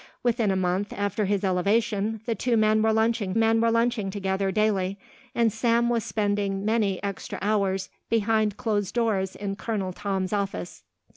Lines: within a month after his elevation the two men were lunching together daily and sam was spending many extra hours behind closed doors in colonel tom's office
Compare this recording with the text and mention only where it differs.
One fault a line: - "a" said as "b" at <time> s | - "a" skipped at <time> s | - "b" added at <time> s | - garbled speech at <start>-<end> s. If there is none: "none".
- "men were lunching" added at 3.4 s